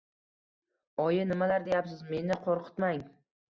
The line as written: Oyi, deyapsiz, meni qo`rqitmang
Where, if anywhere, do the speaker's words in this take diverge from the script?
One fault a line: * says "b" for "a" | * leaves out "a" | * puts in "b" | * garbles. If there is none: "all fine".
* puts in "nimalar"